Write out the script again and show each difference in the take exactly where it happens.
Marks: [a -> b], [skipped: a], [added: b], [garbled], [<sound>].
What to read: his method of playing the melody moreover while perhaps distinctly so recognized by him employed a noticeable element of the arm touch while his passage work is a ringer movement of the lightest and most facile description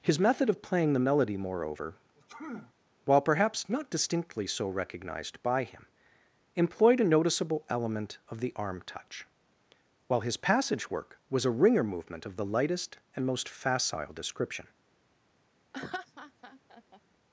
his method of playing the melody moreover [sneeze] while perhaps [added: not] distinctly so recognized by him employed a noticeable element of the arm touch while his passage work [is -> was] a ringer movement of the lightest and most facile description [laugh]